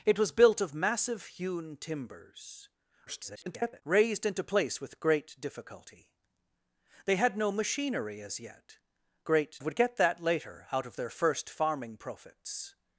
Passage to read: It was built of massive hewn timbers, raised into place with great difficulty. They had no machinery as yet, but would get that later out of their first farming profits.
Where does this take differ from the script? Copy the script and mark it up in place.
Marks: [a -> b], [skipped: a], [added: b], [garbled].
It was built of massive hewn timbers, [garbled] raised into place with great difficulty. They had no machinery as yet, [but -> great] would get that later out of their first farming profits.